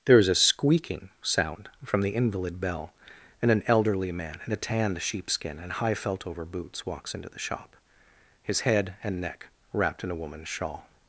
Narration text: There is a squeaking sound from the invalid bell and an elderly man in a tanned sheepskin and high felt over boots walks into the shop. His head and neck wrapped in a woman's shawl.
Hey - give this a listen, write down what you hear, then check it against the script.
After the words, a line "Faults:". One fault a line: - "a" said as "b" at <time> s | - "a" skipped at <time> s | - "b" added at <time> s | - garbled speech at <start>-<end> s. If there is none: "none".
There is a squeaking sound from the invalid bell and an elderly man in a tanned sheepskin and high felt over boots walks into the shop. His head and neck wrapped in a woman's shawl.
Faults:
none